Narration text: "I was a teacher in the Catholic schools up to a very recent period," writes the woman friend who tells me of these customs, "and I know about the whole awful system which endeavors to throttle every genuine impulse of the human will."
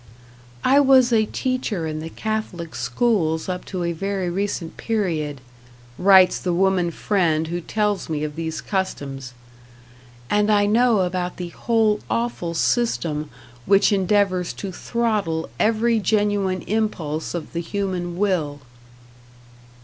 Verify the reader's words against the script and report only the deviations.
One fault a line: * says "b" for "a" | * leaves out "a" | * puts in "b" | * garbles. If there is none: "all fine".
all fine